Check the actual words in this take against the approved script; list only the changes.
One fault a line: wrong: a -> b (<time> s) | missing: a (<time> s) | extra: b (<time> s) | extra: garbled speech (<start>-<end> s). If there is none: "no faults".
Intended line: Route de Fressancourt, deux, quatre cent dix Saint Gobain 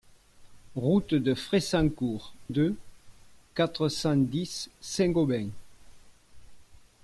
no faults